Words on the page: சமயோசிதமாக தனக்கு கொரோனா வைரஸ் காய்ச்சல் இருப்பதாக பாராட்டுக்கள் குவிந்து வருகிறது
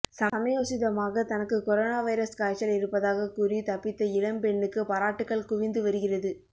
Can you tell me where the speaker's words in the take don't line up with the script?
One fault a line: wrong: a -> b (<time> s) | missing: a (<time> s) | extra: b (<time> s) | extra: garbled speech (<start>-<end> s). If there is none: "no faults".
extra: கூறி தப்பித்த இளம்பெண்ணுக்கு (3.4 s)